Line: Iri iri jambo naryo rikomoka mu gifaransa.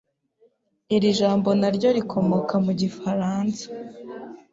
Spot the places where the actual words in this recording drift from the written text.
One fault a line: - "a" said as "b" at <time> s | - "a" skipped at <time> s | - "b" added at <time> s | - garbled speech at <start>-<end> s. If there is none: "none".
- "iri" skipped at 1.1 s